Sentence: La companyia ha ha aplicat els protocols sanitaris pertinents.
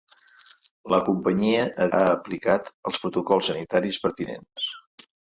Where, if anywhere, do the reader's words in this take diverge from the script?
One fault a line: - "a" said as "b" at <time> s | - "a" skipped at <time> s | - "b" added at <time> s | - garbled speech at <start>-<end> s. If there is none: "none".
none